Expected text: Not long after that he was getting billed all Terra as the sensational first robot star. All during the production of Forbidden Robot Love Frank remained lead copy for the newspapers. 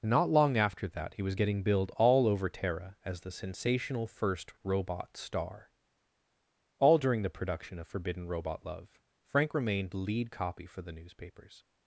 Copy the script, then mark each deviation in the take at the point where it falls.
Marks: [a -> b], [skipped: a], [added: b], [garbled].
Not long after that he was getting billed all [added: over] Terra as the sensational first robot star. All during the production of Forbidden Robot Love Frank remained lead copy for the newspapers.